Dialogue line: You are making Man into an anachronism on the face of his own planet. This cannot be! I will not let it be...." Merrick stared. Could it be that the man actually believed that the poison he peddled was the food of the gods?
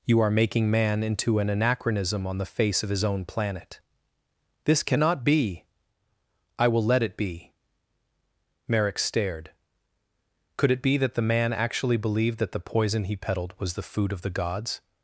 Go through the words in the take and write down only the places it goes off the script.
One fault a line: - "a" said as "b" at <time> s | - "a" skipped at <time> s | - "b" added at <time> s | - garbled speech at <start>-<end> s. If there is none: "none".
- "not" skipped at 6.8 s